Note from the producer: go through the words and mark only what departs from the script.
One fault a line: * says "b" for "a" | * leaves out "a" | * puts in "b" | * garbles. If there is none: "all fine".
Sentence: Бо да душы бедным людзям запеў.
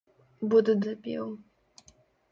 * leaves out "душы бедным людзям"